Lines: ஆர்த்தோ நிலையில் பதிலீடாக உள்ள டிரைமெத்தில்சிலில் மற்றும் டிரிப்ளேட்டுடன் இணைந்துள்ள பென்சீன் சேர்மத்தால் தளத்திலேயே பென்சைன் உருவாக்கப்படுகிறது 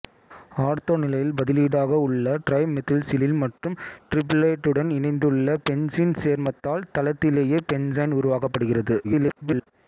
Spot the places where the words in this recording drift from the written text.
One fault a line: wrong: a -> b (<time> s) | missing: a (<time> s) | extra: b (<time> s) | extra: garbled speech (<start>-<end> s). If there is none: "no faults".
extra: garbled speech (9.0-9.7 s)